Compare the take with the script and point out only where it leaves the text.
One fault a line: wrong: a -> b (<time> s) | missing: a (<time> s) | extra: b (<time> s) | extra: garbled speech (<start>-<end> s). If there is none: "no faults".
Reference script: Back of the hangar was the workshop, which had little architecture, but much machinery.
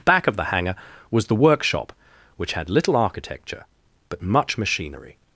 no faults